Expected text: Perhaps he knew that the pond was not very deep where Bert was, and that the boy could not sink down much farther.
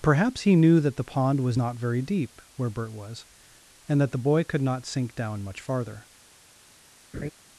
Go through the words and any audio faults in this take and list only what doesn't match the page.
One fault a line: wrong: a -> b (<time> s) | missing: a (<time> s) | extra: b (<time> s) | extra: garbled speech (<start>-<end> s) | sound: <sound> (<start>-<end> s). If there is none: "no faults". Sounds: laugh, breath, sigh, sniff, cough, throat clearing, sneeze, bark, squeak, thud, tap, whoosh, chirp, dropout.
sound: laugh (7.1-7.3 s)